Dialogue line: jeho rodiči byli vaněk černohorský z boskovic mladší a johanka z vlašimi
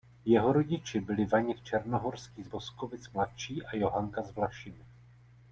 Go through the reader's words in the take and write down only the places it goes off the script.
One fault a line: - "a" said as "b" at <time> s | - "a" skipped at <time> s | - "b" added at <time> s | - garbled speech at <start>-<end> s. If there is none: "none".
none